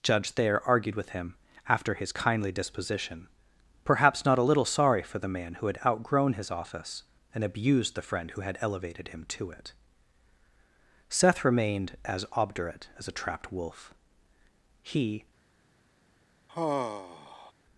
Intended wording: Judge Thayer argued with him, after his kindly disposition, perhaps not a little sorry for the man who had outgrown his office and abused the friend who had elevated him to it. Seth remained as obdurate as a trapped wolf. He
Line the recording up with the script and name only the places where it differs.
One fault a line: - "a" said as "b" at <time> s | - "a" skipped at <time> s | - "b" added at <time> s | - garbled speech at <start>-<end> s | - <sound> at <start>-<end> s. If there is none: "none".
- sigh at 16.5-17.5 s